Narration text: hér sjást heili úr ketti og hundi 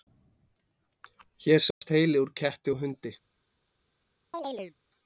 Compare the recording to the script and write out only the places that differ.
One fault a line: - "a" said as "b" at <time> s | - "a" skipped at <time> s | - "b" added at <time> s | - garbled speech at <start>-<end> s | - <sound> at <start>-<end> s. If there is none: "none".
- dropout at 1.7-1.8 s
- chirp at 4.3-4.7 s